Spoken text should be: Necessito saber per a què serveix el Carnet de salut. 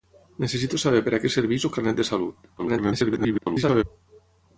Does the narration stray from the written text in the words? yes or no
yes